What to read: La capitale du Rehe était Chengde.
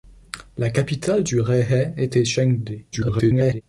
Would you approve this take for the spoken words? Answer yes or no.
no